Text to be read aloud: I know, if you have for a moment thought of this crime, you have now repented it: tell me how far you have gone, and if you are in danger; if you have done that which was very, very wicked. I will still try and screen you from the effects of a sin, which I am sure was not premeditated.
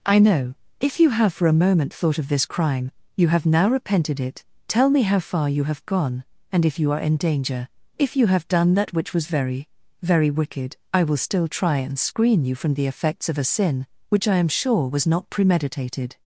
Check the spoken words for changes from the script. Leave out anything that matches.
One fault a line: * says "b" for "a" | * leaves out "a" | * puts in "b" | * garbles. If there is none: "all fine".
all fine